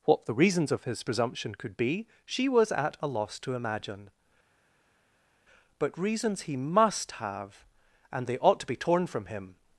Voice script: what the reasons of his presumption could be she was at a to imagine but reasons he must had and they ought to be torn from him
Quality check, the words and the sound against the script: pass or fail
fail